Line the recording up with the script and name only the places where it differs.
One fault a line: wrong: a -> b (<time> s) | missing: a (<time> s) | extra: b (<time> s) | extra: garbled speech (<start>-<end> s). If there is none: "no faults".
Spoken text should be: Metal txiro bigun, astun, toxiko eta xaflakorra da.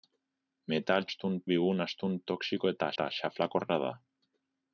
wrong: txiro -> astun (1.1 s)
extra: eta (2.9 s)